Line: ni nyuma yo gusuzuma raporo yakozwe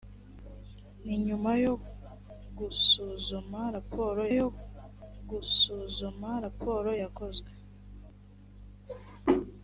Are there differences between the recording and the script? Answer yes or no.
yes